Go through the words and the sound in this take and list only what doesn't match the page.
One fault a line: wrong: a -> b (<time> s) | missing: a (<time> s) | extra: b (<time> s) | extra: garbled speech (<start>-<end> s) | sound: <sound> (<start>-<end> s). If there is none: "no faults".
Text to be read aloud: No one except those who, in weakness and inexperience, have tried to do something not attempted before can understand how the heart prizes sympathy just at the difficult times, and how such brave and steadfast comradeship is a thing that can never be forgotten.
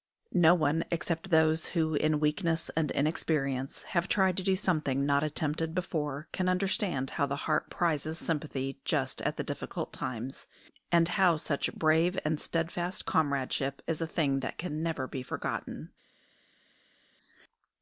no faults